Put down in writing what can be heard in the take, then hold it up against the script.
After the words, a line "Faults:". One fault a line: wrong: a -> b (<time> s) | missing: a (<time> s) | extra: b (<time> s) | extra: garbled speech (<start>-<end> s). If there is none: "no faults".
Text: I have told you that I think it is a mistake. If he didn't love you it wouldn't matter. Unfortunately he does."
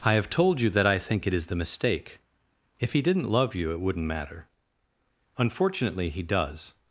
I have told you that I think it is the mistake. If he didn't love you it wouldn't matter. Unfortunately he does."
Faults:
wrong: a -> the (1.5 s)